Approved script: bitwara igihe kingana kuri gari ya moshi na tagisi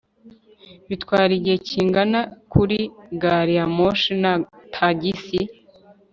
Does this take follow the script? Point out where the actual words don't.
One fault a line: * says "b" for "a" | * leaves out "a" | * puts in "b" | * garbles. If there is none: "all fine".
all fine